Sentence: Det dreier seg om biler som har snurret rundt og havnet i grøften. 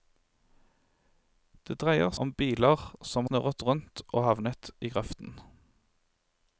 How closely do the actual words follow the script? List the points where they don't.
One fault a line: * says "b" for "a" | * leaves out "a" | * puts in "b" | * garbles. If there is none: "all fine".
* leaves out "seg"
* leaves out "har"